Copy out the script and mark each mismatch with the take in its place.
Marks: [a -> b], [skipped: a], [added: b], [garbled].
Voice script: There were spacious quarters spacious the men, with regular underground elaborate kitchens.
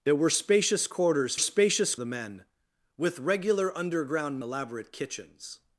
There were spacious quarters spacious the men, with regular underground elaborate kitchens.